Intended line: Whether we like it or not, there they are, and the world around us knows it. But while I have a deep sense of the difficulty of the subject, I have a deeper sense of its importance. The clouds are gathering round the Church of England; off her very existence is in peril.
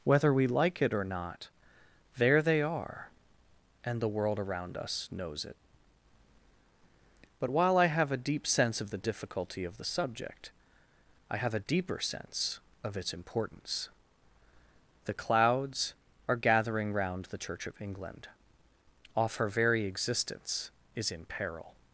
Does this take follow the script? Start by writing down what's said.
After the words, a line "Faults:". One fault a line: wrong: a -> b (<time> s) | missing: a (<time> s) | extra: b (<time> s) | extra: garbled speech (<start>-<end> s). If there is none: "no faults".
Whether we like it or not, there they are, and the world around us knows it. But while I have a deep sense of the difficulty of the subject, I have a deeper sense of its importance. The clouds are gathering round the Church of England; off her very existence is in peril.
Faults:
no faults